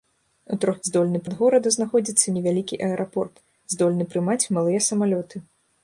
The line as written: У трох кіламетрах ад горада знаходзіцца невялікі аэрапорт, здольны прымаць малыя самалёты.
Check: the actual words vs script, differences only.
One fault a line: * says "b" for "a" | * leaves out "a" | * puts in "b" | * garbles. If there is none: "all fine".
* says "здольны" for "кіламетрах"